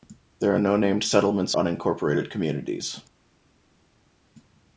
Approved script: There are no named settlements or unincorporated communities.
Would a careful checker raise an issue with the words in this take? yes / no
yes